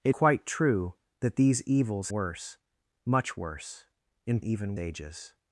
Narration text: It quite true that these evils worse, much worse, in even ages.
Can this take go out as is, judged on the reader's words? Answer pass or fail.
pass